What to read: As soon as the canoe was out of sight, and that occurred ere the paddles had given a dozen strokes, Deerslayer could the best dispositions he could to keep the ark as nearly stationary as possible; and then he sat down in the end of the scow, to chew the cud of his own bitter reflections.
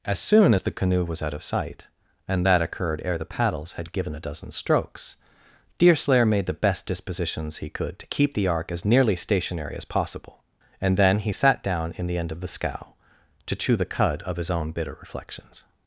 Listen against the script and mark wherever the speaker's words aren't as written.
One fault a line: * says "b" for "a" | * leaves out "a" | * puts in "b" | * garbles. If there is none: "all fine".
* says "made" for "could"